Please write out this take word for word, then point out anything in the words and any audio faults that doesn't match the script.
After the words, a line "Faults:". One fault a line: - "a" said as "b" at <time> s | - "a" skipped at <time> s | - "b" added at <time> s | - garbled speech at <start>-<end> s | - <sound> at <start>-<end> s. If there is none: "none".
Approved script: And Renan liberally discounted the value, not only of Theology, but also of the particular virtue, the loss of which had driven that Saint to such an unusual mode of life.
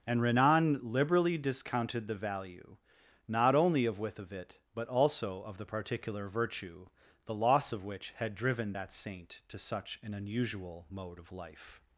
And Renan liberally discounted the value, not only of Withovit, but also of the particular virtue, the loss of which had driven that Saint to such an unusual mode of life.
Faults:
- "Theology" said as "Withovit" at 4.0 s